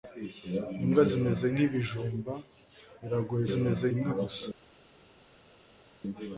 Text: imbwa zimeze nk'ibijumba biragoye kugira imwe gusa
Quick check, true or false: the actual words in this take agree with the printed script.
false